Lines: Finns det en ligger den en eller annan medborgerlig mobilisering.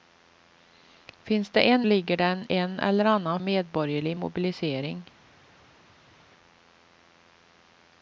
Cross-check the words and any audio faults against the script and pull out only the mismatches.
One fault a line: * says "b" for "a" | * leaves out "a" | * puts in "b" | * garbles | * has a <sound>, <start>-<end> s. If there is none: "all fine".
all fine